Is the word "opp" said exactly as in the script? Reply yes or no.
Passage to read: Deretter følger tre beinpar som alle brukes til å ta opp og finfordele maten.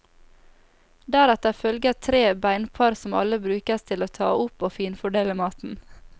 yes